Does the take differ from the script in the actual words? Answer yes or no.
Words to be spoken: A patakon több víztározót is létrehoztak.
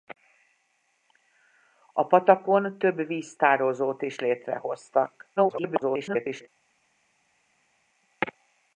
yes